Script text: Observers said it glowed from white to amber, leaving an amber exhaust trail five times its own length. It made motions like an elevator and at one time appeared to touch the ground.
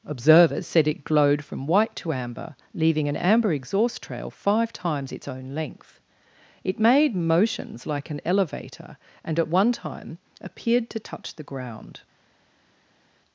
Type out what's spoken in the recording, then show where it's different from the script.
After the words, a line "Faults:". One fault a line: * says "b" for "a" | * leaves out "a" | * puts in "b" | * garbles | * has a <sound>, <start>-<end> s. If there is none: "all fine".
Observers said it glowed from white to amber, leaving an amber exhaust trail five times its own length. It made motions like an elevator and at one time appeared to touch the ground.
Faults:
all fine